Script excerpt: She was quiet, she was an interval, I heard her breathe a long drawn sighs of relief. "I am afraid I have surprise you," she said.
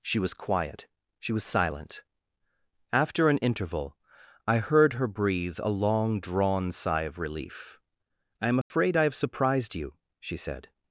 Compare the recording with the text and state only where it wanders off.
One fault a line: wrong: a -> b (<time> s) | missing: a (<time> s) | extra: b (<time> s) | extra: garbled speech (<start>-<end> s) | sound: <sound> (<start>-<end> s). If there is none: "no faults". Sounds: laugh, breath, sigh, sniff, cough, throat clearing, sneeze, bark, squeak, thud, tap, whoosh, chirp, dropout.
extra: silent After (1.4 s)
wrong: sighs -> sigh (6.7 s)
sound: dropout (8.6-8.7 s)
wrong: surprise -> surprised (9.2 s)